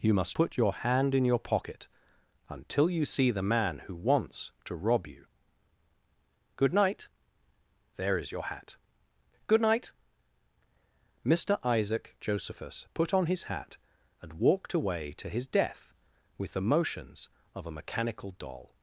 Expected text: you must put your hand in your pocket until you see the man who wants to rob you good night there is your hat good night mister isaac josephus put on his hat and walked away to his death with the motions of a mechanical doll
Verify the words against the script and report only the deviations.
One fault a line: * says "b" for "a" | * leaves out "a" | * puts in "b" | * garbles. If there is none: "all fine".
all fine